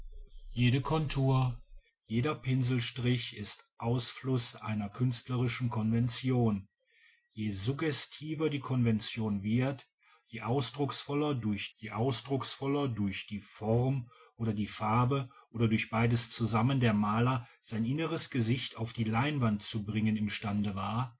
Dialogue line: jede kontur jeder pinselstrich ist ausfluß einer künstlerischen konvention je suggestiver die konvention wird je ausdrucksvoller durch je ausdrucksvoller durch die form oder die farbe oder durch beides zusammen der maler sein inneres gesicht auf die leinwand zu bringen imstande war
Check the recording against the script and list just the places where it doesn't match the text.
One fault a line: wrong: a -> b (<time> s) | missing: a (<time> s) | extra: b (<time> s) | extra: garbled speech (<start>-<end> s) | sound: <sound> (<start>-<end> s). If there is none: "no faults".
no faults